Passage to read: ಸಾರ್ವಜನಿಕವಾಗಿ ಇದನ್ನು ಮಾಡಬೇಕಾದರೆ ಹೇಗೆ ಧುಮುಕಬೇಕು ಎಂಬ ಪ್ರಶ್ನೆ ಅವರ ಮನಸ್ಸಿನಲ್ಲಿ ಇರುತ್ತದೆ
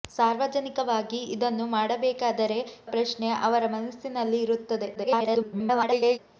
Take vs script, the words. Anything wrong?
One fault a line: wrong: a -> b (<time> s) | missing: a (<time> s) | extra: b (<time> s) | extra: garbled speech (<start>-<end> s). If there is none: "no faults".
missing: ಹೇಗೆ ಧುಮುಕಬೇಕು ಎಂಬ (2.6 s)
extra: garbled speech (4.9-6.2 s)